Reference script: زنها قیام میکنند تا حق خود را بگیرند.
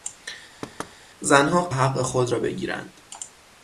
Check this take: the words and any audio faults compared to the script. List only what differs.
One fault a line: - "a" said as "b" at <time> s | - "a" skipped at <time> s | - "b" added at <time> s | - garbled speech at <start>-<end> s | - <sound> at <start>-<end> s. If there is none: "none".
- thud at 0.6-1.0 s
- "قیام میکنند تا" skipped at 1.7 s